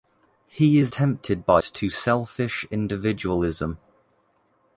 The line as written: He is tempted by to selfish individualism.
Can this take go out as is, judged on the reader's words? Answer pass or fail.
pass